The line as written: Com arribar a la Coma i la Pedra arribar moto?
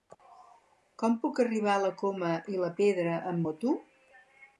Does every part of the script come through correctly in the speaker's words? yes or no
no